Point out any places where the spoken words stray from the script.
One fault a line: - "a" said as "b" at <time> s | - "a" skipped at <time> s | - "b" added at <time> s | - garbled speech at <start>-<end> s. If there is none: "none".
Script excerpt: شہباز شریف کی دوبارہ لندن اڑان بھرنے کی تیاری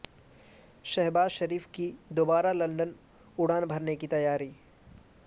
none